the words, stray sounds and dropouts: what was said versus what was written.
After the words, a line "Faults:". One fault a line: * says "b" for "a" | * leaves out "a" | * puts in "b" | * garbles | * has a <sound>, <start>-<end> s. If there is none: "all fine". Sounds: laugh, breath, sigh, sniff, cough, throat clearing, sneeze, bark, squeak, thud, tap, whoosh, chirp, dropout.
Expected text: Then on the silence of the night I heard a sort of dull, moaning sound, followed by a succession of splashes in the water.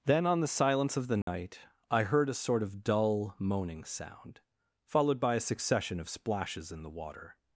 Then on the silence of the night I heard a sort of dull, moaning sound, followed by a succession of splashes in the water.
Faults:
* has a dropout, 1.2-1.3 s